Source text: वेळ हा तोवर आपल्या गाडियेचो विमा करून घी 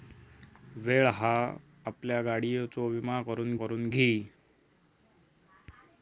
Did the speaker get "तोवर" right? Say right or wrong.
wrong